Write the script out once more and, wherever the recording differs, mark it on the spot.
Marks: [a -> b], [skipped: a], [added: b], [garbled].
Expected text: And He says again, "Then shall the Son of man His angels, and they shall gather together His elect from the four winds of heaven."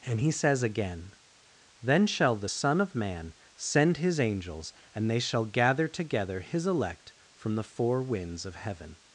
And He says again, "Then shall the Son of man [added: send] His angels, and they shall gather together His elect from the four winds of heaven."